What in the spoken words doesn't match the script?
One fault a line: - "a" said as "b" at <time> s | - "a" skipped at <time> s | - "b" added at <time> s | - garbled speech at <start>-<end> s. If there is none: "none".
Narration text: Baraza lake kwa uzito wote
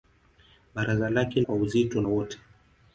none